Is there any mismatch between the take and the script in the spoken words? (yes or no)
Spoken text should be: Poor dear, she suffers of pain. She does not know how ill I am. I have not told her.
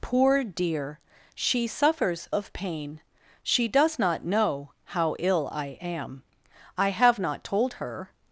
no